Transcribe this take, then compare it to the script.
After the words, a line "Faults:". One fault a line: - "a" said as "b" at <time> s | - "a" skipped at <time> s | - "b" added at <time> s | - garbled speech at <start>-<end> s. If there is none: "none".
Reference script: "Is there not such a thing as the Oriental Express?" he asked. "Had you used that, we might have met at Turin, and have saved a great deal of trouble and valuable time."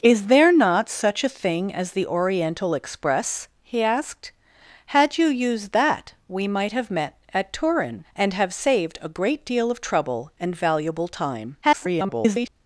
"Is there not such a thing as the Oriental Express?" he asked. "Had you used that, we might have met at Turin, and have saved a great deal of trouble and valuable time." [garbled]
Faults:
- garbled speech at 11.6-12.5 s